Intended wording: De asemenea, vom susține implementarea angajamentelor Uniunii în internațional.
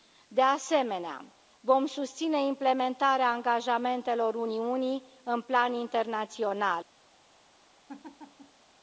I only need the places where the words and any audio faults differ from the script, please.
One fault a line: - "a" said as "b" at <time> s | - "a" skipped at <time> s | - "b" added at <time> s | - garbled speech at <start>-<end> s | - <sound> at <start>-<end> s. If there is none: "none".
- "plan" added at 5.4 s
- laugh at 7.9-8.6 s